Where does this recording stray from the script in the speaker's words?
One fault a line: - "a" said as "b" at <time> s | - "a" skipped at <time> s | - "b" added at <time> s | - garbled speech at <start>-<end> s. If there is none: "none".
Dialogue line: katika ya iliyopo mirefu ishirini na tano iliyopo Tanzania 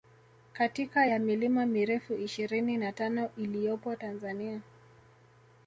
- "iliyopo" said as "milima" at 1.2 s